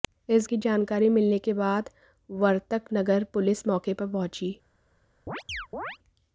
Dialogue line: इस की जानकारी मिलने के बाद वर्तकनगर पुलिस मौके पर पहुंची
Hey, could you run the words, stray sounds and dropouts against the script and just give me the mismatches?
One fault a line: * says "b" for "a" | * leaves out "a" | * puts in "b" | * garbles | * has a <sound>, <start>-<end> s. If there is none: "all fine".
* has a chirp, 5.3-6.0 s